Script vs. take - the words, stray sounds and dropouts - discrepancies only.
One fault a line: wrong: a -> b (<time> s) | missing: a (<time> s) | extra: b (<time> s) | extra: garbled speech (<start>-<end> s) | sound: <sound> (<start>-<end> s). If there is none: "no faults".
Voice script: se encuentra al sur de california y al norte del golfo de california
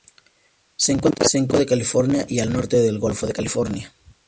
no faults